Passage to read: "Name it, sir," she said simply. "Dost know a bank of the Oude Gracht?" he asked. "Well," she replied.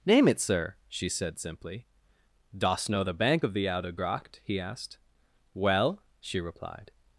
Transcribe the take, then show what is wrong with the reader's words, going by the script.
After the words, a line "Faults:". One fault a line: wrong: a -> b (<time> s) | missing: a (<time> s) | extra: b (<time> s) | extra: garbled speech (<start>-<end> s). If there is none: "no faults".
"Name it, sir," she said simply. "Dost know the bank of the Oude Gracht?" he asked. "Well," she replied.
Faults:
wrong: a -> the (3.0 s)